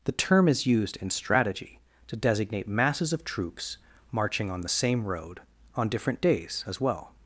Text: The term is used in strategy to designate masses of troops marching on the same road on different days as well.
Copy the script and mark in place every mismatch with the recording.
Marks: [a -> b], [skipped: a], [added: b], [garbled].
The term is used in strategy to designate masses of troops marching on the same road on different days as well.